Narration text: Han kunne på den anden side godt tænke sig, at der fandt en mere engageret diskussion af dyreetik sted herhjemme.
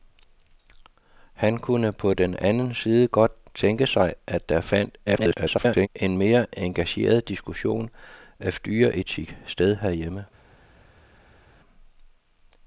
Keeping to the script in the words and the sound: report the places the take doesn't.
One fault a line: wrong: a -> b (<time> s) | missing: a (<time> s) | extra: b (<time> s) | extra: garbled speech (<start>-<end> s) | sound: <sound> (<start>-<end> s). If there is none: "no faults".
extra: garbled speech (5.1-5.9 s)